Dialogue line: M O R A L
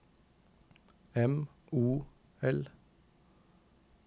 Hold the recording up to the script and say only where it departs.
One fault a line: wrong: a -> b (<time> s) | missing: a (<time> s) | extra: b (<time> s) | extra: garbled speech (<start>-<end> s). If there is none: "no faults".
missing: R A (2.1 s)